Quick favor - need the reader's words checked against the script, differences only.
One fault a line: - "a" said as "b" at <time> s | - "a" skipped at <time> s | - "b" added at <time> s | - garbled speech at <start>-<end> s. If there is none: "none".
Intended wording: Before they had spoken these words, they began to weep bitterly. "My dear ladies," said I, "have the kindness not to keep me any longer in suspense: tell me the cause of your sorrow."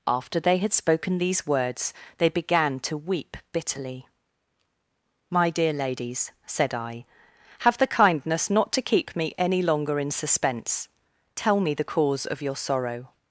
- "Before" said as "After" at 0.1 s